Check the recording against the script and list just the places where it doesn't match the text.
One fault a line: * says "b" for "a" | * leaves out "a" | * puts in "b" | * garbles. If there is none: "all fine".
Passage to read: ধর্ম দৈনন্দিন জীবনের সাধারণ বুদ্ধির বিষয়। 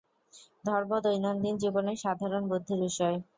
all fine